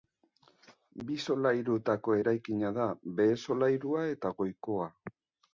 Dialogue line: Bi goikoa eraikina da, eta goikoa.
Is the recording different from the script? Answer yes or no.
yes